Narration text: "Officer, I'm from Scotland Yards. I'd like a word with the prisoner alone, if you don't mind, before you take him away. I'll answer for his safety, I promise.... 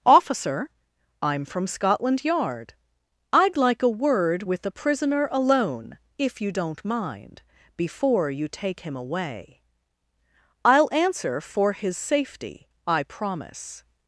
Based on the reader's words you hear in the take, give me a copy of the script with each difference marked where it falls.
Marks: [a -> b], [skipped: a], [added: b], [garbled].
"Officer, I'm from Scotland [Yards. -> Yard] I'd like a word with the prisoner alone, if you don't mind, before you take him away. I'll answer for his safety, I promise....